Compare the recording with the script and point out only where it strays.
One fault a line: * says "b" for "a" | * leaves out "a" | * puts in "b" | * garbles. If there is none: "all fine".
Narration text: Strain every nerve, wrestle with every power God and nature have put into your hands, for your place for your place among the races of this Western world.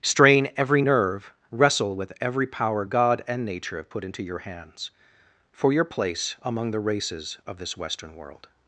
* leaves out "for your place"